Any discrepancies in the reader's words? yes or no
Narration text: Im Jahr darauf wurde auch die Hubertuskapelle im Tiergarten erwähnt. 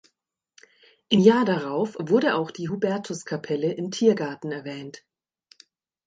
no